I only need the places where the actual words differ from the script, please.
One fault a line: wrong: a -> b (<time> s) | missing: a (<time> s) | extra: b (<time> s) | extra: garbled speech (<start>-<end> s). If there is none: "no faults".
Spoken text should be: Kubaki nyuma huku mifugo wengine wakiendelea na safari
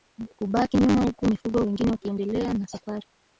no faults